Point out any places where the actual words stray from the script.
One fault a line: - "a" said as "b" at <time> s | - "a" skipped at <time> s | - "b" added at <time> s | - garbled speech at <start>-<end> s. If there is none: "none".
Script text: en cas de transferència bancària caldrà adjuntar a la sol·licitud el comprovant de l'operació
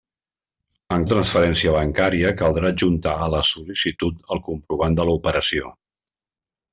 - "cas" skipped at 1.0 s